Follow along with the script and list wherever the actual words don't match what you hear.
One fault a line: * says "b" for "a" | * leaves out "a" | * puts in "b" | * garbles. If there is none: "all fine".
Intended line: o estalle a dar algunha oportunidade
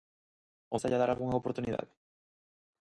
all fine